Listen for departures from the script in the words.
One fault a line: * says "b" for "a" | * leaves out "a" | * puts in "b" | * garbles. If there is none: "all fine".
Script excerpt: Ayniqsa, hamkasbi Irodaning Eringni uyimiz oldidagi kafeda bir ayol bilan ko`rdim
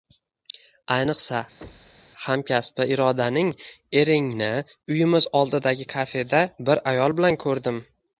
all fine